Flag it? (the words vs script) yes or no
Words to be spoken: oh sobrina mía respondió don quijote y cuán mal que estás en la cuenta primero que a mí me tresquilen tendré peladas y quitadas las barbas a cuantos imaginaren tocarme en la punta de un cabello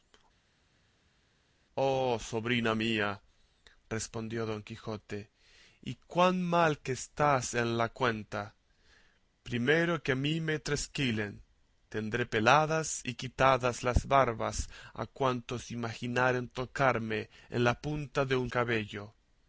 no